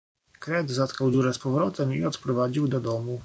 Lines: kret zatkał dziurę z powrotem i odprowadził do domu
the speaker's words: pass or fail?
pass